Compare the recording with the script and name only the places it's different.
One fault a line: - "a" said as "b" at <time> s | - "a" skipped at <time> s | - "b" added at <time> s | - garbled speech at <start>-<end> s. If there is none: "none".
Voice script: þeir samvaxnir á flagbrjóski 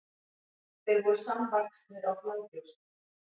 - "voru" added at 1.1 s